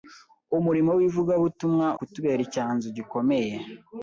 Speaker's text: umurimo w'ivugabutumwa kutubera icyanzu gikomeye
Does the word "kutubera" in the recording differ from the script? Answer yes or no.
no